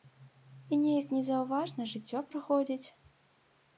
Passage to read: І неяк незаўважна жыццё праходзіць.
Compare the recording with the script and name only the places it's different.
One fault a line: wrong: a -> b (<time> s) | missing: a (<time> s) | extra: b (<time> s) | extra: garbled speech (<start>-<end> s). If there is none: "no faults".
no faults